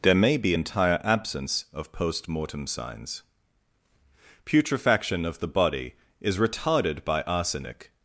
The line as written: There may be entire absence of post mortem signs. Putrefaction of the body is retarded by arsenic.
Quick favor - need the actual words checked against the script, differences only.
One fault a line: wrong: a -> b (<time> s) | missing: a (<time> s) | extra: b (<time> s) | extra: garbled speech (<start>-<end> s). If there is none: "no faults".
no faults